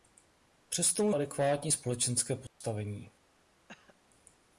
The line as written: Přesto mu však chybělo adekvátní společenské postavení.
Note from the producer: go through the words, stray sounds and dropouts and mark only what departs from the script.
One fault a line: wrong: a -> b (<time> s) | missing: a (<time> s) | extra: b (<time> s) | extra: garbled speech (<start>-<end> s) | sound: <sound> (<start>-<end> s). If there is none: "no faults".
missing: však chybělo (1.1 s)
sound: dropout (2.5-2.6 s)
sound: cough (3.7-4.0 s)